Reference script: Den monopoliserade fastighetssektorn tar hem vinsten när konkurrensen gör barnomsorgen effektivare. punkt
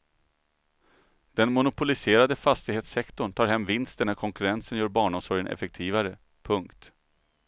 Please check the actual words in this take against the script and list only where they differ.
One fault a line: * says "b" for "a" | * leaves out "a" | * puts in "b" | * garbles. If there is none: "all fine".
all fine